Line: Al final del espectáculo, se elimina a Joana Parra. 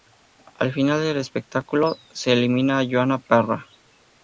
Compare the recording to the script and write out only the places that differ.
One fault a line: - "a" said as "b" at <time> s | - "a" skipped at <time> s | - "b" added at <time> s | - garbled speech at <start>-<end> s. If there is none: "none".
none